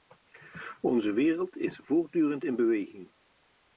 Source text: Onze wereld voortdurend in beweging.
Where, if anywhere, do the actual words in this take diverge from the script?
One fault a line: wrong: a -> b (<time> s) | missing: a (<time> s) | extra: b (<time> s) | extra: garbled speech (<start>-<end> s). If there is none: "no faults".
extra: is (1.6 s)